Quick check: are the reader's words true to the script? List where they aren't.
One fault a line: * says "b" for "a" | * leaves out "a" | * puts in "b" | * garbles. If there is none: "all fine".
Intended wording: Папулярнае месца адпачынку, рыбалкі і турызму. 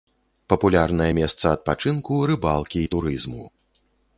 all fine